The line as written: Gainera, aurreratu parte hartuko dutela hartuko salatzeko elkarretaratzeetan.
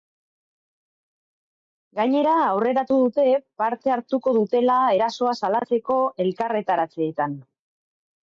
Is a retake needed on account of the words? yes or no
yes